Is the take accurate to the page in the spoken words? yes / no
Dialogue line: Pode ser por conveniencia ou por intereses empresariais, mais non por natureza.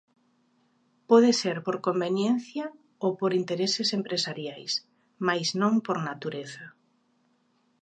yes